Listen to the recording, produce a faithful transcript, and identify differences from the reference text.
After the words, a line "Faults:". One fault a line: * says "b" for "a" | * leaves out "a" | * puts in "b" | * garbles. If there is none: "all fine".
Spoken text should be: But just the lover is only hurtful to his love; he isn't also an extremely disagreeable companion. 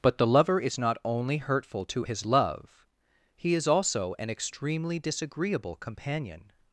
But the lover is not only hurtful to his love; he is also an extremely disagreeable companion.
Faults:
* leaves out "just"
* puts in "not"
* says "is" for "isn't"